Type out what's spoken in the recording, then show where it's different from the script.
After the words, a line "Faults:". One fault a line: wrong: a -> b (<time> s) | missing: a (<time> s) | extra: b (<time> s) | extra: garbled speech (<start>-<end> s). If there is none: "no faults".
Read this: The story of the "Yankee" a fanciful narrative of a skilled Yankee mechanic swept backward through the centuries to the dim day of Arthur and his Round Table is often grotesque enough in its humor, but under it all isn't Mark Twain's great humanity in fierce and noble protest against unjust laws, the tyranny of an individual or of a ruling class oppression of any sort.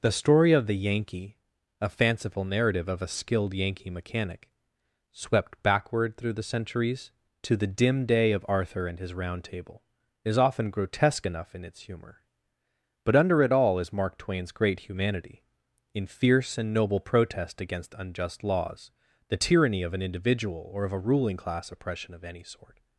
The story of the "Yankee" a fanciful narrative of a skilled Yankee mechanic swept backward through the centuries to the dim day of Arthur and his Round Table is often grotesque enough in its humor, but under it all is Mark Twain's great humanity in fierce and noble protest against unjust laws, the tyranny of an individual or of a ruling class oppression of any sort.
Faults:
wrong: isn't -> is (13.8 s)